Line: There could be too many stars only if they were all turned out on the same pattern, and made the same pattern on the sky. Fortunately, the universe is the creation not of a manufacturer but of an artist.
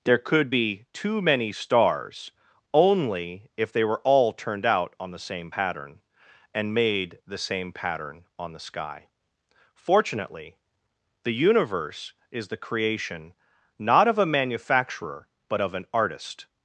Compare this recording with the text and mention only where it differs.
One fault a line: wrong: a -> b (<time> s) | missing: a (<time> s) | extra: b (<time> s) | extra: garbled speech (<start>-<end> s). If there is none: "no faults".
no faults